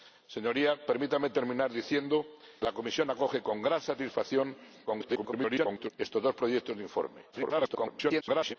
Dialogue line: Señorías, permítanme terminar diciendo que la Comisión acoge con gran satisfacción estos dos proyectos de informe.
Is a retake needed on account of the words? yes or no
yes